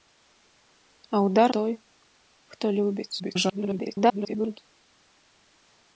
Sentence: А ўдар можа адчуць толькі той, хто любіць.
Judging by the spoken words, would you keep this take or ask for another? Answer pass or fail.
fail